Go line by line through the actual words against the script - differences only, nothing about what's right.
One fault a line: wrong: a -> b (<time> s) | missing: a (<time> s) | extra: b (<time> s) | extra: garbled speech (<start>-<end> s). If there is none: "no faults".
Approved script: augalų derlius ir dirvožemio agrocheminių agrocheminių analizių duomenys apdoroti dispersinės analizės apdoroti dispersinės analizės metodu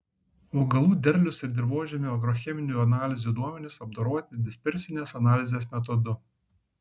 missing: agrocheminių (2.8 s)
missing: apdoroti dispersinės analizės (5.7 s)